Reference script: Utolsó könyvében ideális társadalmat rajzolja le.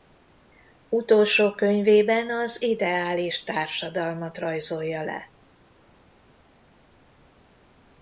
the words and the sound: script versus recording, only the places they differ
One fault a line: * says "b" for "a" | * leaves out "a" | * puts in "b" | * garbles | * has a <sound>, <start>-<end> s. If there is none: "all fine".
* puts in "az"